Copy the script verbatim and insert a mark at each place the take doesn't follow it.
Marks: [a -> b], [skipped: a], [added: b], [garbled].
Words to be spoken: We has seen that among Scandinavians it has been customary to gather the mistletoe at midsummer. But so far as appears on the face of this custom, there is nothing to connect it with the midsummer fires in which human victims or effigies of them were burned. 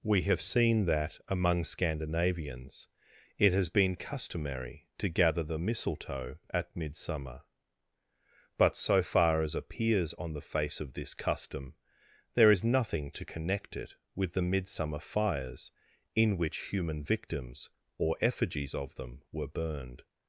We [has -> have] seen that among Scandinavians it has been customary to gather the mistletoe at midsummer. But so far as appears on the face of this custom, there is nothing to connect it with the midsummer fires in which human victims or effigies of them were burned.